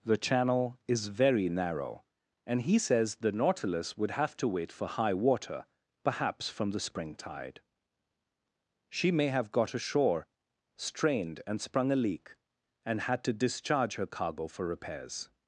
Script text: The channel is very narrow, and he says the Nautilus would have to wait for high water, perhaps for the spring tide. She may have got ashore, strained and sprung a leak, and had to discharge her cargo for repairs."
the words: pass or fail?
fail